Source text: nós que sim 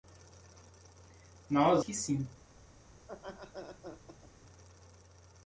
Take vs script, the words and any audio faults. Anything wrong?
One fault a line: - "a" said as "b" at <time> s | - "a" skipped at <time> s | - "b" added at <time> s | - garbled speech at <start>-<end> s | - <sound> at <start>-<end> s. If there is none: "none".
- laugh at 3.0-4.3 s